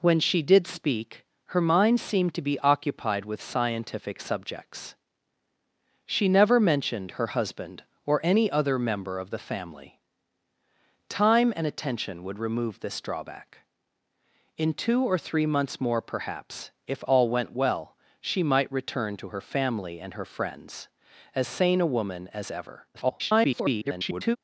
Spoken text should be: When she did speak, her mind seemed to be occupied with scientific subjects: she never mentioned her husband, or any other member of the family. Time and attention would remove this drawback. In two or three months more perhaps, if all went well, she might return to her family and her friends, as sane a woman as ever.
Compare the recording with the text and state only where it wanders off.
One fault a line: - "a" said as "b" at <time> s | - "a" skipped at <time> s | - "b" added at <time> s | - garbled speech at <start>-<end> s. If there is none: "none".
- garbled speech at 22.9-24.4 s